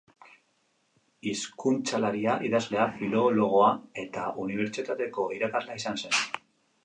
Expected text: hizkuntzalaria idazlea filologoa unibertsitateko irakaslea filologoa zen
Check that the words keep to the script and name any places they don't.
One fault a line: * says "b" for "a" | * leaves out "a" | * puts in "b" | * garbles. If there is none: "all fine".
* puts in "eta"
* says "izan" for "filologoa"